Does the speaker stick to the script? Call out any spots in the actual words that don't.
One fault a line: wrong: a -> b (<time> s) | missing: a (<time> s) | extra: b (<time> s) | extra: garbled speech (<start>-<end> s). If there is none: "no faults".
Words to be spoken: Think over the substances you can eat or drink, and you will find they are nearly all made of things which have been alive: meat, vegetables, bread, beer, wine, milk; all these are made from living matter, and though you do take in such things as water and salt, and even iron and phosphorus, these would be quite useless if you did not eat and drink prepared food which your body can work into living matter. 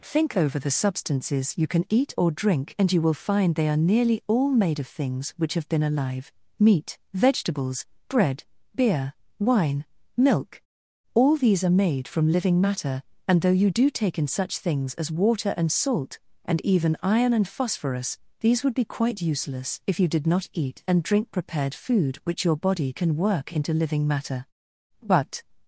extra: But (25.0 s)